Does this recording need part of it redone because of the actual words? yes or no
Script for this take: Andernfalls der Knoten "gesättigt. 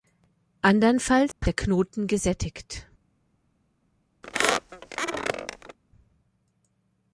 no